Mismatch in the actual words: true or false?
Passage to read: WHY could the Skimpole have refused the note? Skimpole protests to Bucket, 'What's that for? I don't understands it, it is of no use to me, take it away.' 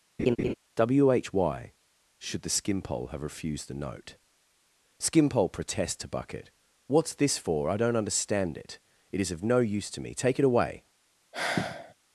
true